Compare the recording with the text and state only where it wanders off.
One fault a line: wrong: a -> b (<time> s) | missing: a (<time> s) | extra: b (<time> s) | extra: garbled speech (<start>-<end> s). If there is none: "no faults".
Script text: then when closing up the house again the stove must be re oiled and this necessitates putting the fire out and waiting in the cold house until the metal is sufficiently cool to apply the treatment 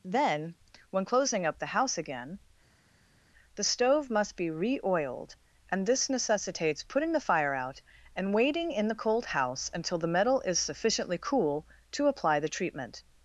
no faults